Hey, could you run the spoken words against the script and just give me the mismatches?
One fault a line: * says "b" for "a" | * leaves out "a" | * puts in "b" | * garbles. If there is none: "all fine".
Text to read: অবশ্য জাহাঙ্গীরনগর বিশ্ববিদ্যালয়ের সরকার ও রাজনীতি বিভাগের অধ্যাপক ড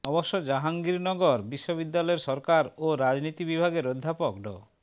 all fine